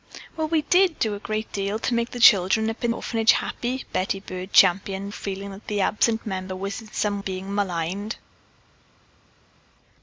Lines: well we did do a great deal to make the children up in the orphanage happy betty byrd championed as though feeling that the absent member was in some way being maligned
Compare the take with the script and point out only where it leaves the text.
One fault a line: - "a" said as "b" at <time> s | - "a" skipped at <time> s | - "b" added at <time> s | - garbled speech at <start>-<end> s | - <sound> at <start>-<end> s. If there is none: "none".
- "the" skipped at 3.0 s
- "as though" skipped at 5.1 s
- "way" skipped at 7.2 s